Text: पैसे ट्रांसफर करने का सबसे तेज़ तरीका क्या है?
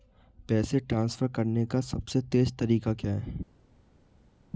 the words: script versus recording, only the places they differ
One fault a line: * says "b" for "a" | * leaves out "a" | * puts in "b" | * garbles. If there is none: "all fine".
all fine